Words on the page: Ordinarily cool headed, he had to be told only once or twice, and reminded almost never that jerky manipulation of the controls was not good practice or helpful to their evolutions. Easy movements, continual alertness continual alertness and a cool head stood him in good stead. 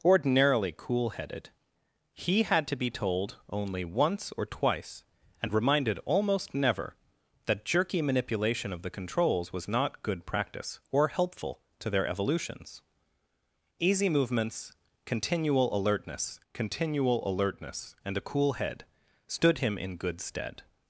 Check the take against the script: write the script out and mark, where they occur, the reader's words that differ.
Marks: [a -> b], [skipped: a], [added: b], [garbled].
Ordinarily cool headed, he had to be told only once or twice, and reminded almost never that jerky manipulation of the controls was not good practice or helpful to their evolutions. Easy movements, continual alertness continual alertness and a cool head stood him in good stead.